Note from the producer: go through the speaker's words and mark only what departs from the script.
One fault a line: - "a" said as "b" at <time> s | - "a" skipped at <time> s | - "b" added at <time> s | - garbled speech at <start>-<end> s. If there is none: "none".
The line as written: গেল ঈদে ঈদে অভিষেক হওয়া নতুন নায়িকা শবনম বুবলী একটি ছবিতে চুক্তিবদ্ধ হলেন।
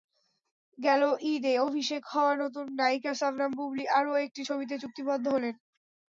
- "ঈদে" skipped at 1.5 s
- "আরও" added at 4.0 s